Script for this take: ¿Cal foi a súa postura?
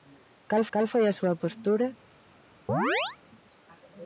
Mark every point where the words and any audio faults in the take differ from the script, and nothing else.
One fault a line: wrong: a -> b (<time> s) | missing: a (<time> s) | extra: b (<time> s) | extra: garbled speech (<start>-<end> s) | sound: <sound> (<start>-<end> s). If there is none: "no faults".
extra: cal (0.7 s)
sound: chirp (2.7-3.2 s)